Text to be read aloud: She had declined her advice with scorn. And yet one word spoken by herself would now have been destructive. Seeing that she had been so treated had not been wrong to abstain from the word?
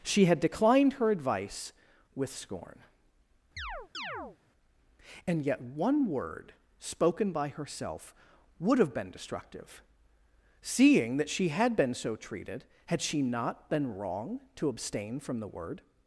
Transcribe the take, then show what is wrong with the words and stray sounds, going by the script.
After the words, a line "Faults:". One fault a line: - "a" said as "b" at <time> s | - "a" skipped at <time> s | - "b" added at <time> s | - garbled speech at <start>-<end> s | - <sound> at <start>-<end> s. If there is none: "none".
She had declined her advice with scorn. And yet one word spoken by herself would have been destructive. Seeing that she had been so treated had she not been wrong to abstain from the word?
Faults:
- chirp at 3.6-4.4 s
- "now" skipped at 8.8 s
- "she" added at 13.0 s